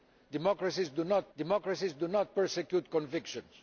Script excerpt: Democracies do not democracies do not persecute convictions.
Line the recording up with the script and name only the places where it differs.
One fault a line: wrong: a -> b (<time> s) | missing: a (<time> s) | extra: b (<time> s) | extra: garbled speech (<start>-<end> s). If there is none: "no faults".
no faults